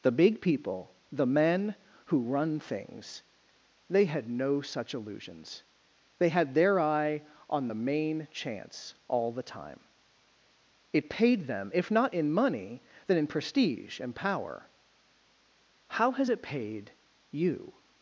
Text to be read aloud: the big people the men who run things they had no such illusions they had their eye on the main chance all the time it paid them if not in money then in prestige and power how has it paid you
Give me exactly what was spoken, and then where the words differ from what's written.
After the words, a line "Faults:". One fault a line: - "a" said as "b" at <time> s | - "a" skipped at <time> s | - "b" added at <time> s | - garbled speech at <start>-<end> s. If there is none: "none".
the big people the men who run things they had no such illusions they had their eye on the main chance all the time it paid them if not in money then in prestige and power how has it paid you
Faults:
none